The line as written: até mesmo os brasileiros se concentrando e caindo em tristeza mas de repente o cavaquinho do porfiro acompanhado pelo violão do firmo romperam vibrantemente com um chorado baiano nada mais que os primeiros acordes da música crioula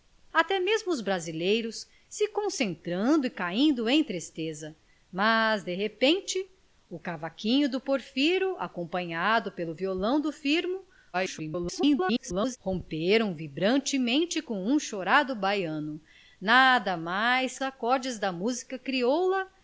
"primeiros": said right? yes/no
no